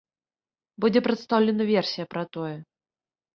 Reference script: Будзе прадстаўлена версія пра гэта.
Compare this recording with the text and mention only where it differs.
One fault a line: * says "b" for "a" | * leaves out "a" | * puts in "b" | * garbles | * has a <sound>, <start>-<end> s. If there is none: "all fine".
* says "тое" for "гэта"